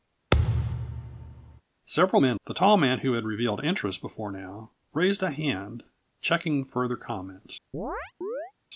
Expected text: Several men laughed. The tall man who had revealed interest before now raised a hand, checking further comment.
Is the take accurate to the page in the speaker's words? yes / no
no